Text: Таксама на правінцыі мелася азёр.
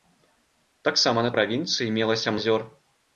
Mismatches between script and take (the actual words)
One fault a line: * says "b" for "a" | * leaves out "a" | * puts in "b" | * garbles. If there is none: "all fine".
all fine